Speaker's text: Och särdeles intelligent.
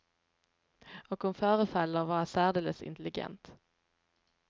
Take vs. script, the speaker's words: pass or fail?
fail